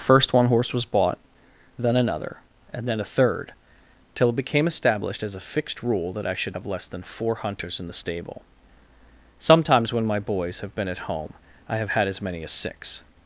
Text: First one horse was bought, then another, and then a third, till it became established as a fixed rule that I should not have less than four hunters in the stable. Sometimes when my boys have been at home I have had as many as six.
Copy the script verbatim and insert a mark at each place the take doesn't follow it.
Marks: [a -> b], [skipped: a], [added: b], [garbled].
First one horse was bought, then another, and then a third, till it became established as a fixed rule that I should [skipped: not] have less than four hunters in the stable. Sometimes when my boys have been at home I have had as many as six.